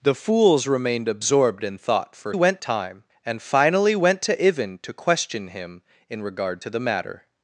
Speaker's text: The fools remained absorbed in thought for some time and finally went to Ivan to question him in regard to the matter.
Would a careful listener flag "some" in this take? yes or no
yes